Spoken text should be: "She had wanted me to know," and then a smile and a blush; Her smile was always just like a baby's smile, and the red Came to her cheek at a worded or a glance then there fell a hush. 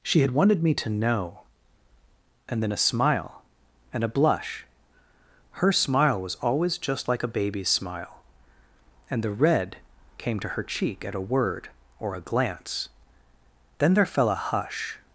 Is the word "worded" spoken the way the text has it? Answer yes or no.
no